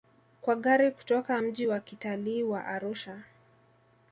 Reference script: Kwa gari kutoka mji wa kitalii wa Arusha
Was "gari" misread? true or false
false